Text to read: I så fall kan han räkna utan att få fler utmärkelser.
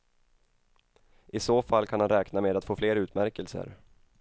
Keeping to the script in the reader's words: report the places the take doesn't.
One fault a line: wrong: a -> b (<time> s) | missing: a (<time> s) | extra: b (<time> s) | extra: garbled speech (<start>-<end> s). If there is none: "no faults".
wrong: utan -> med (2.4 s)